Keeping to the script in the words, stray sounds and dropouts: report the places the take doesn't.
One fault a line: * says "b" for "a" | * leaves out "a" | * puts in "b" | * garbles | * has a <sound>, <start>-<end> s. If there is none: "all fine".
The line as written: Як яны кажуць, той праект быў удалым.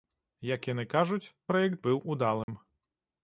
* leaves out "той"
* has a dropout, 2.4-2.5 s